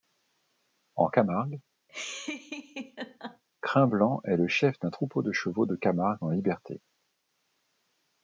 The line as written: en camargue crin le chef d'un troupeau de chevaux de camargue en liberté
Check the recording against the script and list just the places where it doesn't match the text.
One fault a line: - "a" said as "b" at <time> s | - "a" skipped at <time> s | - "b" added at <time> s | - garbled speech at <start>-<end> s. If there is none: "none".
- "blanc est" added at 3.9 s